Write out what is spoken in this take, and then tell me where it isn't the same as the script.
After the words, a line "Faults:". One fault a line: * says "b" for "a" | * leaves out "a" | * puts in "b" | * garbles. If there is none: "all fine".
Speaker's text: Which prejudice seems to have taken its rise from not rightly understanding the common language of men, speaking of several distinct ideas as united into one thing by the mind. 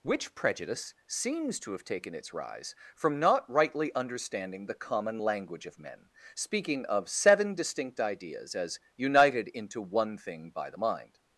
Which prejudice seems to have taken its rise from not rightly understanding the common language of men, speaking of seven distinct ideas as united into one thing by the mind.
Faults:
* says "seven" for "several"